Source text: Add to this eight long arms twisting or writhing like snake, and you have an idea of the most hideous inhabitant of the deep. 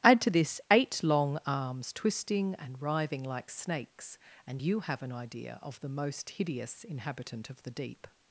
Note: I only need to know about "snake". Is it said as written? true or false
false